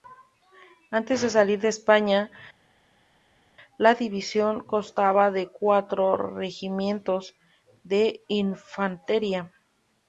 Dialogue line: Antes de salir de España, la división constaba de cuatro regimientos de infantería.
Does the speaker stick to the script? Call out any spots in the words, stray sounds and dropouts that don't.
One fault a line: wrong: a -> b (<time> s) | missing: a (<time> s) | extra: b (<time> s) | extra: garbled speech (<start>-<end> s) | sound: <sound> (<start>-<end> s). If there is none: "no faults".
no faults